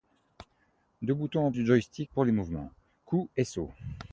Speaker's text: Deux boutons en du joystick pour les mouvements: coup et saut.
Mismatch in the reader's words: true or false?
false